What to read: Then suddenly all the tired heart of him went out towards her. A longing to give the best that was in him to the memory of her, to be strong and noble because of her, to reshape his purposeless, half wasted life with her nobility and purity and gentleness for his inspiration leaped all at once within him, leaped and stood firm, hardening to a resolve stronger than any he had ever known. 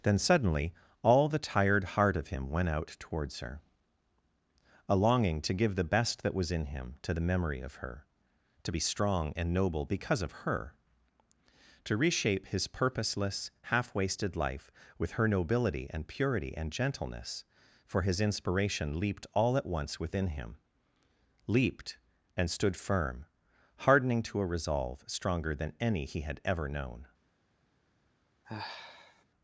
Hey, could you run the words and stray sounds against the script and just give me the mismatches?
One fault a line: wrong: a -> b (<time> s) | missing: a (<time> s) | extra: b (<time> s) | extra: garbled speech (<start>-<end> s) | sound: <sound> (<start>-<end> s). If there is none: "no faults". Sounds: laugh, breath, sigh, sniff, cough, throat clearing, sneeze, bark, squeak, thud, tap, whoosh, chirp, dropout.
sound: sigh (28.4-29.2 s)